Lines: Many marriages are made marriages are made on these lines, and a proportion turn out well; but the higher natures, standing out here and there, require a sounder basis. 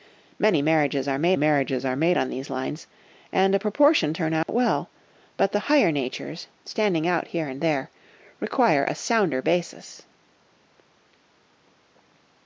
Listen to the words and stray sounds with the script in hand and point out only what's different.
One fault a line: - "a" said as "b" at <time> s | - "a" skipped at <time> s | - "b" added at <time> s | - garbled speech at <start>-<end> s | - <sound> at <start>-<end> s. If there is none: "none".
- dropout at 4.4-4.5 s